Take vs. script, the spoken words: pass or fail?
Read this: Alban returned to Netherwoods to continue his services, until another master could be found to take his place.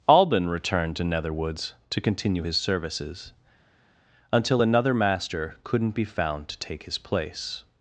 fail